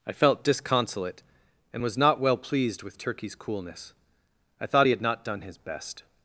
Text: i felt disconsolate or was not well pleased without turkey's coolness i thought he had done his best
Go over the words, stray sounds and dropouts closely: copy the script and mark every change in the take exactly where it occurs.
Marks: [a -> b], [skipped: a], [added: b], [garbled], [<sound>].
i felt disconsolate [or -> and] was not well pleased [without -> with] turkey's coolness i thought he had [added: not] done his best